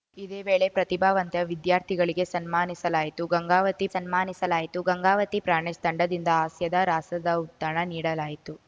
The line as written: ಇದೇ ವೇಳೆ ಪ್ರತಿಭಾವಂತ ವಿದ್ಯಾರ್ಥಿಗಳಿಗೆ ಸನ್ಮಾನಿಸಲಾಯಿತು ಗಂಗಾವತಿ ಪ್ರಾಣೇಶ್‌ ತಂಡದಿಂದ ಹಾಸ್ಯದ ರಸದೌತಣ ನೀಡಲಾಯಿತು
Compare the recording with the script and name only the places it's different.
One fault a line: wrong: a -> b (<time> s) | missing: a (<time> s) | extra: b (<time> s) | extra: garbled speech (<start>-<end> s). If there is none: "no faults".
extra: ಸನ್ಮಾನಿಸಲಾಯಿತು ಗಂಗಾವತಿ (3.9 s)